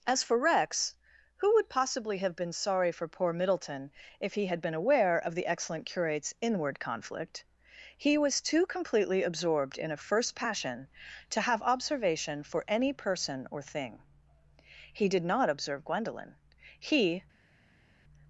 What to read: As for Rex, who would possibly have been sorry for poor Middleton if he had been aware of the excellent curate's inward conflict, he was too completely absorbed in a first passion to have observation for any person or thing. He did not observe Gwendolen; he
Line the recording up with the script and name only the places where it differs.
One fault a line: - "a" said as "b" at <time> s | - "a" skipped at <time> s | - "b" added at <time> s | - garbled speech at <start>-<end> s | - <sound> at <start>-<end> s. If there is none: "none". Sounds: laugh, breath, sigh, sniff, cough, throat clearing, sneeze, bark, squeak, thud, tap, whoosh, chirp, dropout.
none